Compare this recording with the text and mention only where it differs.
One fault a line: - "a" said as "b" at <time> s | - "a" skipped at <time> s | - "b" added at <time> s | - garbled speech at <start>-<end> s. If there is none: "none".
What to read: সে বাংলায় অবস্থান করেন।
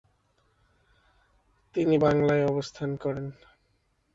- "সে" said as "তিনি" at 1.8 s